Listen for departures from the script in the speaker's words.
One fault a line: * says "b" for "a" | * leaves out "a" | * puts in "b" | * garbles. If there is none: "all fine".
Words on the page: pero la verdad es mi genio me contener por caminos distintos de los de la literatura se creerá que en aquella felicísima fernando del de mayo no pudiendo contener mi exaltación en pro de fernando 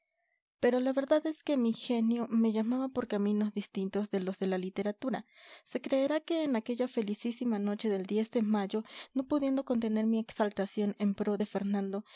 * puts in "que"
* says "llamaba" for "contener"
* says "noche" for "fernando"